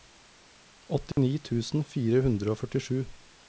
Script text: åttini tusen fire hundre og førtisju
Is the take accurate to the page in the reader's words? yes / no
yes